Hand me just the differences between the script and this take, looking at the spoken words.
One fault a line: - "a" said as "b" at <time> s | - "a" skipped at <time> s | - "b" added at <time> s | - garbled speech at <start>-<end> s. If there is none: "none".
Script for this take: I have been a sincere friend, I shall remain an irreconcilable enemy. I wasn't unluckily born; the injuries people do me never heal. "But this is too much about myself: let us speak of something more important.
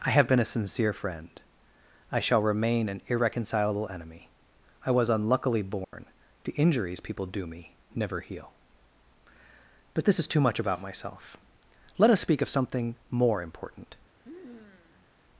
- "wasn't" said as "was" at 4.9 s